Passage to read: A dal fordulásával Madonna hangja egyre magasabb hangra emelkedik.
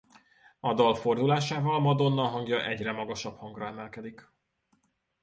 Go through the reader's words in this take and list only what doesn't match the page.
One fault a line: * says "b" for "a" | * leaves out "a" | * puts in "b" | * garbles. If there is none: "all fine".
all fine